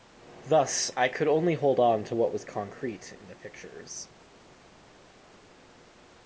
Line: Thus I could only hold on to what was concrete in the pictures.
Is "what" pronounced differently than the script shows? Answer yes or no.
no